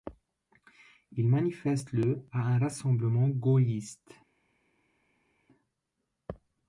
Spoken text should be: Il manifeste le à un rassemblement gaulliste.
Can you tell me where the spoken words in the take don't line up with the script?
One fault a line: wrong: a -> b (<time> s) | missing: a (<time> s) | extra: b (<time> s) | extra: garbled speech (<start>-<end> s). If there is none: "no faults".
no faults